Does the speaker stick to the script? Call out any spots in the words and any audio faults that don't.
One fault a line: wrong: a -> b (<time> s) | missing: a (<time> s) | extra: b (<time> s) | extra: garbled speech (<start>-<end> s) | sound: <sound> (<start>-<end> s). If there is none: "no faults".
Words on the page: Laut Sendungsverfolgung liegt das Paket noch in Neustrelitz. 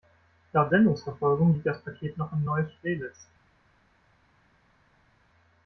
no faults